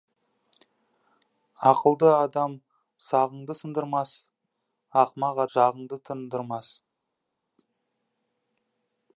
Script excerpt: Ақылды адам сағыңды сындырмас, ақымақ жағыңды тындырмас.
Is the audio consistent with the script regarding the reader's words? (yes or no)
yes